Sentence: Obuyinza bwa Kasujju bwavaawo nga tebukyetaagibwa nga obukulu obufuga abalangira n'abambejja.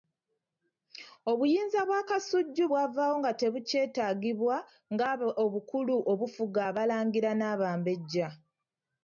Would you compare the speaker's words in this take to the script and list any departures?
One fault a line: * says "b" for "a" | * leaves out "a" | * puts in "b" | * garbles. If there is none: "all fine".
all fine